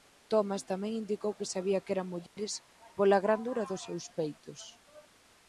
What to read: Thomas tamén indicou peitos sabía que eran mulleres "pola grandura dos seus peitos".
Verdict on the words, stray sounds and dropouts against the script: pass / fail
fail